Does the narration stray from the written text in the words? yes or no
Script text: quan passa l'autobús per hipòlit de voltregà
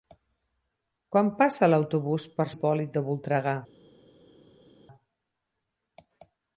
no